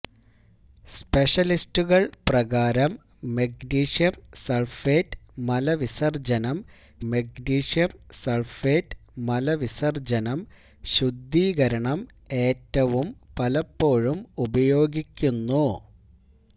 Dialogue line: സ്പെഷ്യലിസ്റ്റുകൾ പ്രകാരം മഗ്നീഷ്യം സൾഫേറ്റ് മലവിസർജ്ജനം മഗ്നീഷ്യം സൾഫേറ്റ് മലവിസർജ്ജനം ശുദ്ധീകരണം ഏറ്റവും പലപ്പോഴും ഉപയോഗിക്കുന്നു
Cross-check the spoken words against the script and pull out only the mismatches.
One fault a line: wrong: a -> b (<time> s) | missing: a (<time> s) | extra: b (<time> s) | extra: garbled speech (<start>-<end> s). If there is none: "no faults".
no faults